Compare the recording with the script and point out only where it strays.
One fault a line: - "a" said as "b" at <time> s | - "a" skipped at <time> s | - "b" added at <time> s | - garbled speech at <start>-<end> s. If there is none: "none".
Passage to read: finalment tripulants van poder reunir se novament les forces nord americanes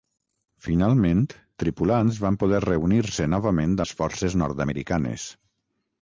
none